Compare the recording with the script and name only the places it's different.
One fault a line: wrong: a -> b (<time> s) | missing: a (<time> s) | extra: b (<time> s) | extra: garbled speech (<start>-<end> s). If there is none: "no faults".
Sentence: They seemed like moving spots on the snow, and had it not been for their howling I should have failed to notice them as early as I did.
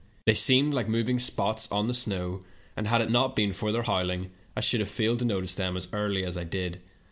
no faults